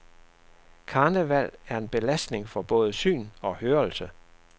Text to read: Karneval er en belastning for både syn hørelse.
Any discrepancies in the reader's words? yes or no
yes